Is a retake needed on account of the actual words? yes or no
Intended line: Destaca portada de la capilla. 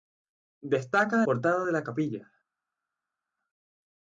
no